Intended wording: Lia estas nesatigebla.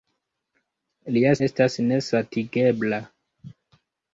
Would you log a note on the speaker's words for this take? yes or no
no